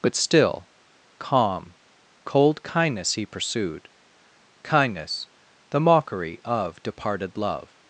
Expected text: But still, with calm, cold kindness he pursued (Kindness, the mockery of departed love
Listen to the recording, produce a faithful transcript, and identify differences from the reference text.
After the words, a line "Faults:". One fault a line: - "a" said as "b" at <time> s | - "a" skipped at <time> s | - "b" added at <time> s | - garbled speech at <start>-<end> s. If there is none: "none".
But still, calm, cold kindness he pursued (Kindness, the mockery of departed love
Faults:
- "with" skipped at 0.7 s